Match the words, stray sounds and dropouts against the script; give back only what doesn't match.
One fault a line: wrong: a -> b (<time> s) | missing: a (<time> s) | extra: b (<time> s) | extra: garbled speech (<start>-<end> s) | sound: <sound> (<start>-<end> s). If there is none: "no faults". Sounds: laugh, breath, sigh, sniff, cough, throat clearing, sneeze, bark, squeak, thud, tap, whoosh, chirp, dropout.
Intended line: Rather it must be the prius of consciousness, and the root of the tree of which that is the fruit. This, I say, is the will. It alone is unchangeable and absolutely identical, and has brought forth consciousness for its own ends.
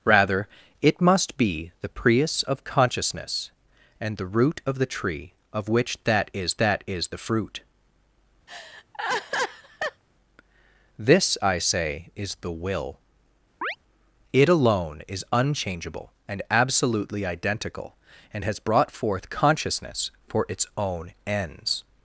extra: that is (6.6 s)
sound: laugh (8.5-10.0 s)
sound: chirp (13.6-13.8 s)